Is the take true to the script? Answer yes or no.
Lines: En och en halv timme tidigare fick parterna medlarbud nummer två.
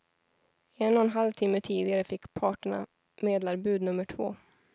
yes